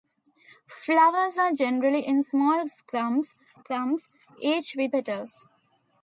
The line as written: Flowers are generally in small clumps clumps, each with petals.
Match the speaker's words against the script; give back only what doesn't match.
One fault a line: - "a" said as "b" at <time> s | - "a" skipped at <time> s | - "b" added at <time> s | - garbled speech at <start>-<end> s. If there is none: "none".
none